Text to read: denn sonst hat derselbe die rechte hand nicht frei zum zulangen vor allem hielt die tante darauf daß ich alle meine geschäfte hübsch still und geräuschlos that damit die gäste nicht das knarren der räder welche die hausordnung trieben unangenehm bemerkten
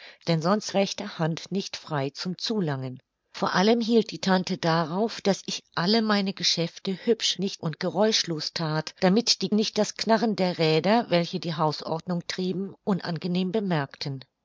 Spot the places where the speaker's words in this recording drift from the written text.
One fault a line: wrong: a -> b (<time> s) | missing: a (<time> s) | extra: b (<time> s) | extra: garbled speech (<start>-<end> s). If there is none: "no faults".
missing: hat derselbe die (0.7 s)
wrong: still -> nicht (7.4 s)
missing: gäste (9.5 s)